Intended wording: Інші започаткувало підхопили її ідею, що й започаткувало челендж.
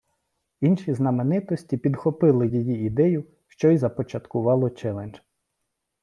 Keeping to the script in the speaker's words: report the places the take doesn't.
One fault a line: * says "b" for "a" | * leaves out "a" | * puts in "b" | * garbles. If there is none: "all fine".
* says "знаменитості" for "започаткувало"